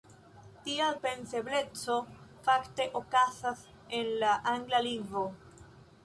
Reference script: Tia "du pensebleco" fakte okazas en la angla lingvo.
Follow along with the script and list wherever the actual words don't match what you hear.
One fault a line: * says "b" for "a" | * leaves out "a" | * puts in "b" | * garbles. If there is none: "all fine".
* leaves out "du"